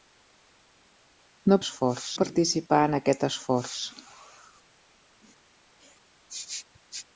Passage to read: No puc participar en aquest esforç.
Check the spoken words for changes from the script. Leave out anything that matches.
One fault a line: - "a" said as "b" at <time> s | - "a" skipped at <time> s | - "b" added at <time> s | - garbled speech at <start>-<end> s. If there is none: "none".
- "puc" said as "esforç" at 1.6 s